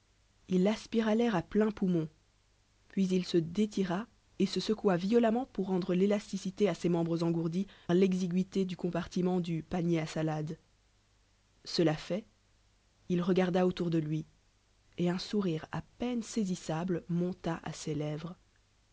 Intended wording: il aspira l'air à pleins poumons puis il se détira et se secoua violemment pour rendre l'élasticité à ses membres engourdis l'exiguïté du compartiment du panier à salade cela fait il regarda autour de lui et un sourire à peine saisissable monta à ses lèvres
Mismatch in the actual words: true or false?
false